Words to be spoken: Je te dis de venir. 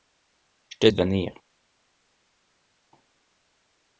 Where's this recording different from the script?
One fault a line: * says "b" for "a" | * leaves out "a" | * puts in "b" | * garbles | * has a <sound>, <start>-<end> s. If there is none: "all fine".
* leaves out "dis"